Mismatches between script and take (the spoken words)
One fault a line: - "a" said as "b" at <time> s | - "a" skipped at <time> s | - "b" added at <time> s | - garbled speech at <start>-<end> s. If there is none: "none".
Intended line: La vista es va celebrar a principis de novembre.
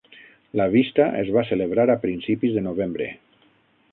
none